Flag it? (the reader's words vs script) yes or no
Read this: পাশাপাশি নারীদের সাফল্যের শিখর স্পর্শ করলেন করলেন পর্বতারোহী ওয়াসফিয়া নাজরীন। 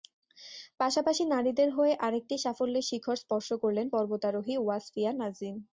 yes